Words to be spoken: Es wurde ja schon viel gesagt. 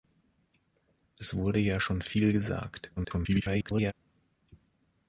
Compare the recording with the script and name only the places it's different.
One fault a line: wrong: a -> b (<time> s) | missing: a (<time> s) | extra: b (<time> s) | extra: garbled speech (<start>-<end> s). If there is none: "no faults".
extra: garbled speech (3.0-3.9 s)